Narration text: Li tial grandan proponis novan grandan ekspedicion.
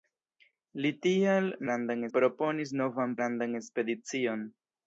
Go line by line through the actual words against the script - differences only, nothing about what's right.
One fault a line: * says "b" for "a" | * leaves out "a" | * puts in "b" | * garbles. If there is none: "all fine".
all fine